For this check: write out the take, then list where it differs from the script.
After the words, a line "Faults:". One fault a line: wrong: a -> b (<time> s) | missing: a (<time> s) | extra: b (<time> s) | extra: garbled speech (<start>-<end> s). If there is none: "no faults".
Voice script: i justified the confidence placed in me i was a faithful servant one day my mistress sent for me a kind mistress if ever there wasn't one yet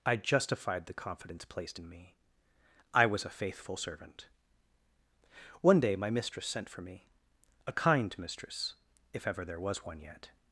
i justified the confidence placed in me i was a faithful servant one day my mistress sent for me a kind mistress if ever there was one yet
Faults:
wrong: wasn't -> was (9.6 s)